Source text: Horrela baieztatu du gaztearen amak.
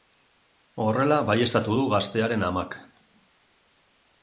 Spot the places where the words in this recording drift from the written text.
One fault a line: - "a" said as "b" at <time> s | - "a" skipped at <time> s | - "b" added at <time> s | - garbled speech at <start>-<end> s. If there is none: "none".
none